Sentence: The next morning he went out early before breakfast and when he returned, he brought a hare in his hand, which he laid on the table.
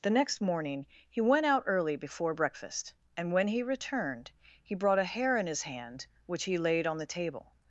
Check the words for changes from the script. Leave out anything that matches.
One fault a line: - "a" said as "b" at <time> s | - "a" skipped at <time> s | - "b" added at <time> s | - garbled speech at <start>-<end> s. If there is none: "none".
none